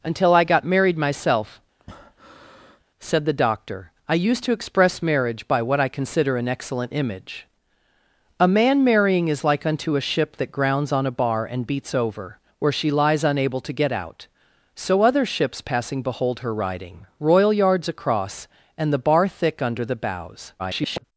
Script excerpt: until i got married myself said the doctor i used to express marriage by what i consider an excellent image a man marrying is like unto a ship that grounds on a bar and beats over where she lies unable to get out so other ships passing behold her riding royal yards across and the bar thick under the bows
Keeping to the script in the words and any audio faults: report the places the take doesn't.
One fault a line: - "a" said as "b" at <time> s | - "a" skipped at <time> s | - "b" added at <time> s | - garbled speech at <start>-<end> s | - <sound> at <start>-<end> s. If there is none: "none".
- breath at 1.8-2.8 s
- garbled speech at 20.6-21.0 s